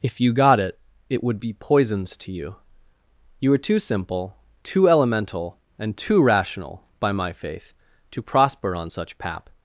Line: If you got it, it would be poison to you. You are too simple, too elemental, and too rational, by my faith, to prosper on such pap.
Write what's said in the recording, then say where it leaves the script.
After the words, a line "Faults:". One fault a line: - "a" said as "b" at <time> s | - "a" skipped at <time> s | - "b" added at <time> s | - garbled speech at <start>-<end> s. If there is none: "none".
If you got it, it would be poisons to you. You are too simple, too elemental, and too rational, by my faith, to prosper on such pap.
Faults:
- "poison" said as "poisons" at 1.5 s